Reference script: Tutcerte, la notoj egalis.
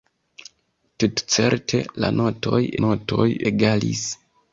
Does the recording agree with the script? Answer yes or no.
no